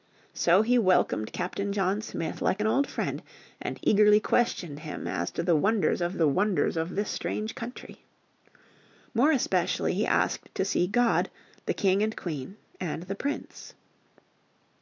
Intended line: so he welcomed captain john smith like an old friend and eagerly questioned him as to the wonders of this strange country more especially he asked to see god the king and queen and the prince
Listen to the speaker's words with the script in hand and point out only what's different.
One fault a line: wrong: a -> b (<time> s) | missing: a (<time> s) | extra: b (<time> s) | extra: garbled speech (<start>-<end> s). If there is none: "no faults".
extra: the wonders of (6.1 s)